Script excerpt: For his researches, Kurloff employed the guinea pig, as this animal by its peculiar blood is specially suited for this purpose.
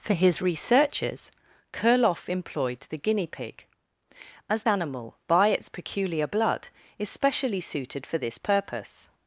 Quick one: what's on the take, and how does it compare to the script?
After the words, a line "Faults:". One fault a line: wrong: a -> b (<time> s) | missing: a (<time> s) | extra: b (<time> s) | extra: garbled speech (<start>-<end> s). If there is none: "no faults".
For his researches, Kurloff employed the guinea pig, as animal by its peculiar blood is specially suited for this purpose.
Faults:
missing: this (4.6 s)